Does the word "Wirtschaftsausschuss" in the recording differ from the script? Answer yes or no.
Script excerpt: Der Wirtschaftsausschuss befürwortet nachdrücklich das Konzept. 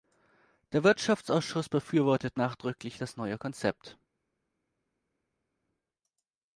no